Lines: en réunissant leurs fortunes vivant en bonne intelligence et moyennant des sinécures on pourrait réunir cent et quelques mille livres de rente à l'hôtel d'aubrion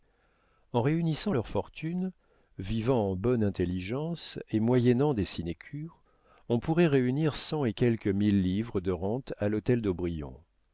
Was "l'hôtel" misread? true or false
false